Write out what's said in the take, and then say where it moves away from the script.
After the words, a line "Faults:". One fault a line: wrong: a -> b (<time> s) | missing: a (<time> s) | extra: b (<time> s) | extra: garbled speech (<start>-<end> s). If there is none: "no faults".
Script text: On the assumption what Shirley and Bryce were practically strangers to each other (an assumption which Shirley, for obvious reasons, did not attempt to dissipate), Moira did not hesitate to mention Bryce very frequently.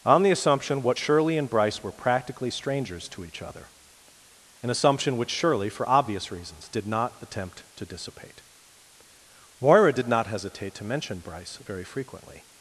On the assumption what Shirley and Bryce were practically strangers to each other (an assumption which Shirley, for obvious reasons, did not attempt to dissipate), Moira did not hesitate to mention Bryce very frequently.
Faults:
no faults